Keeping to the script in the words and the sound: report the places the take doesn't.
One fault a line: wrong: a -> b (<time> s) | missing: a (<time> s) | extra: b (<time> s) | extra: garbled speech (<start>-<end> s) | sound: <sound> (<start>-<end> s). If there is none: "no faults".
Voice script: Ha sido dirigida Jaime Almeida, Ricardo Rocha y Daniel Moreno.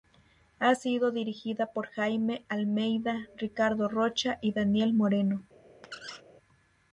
extra: por (1.7 s)
sound: squeak (5.8-6.2 s)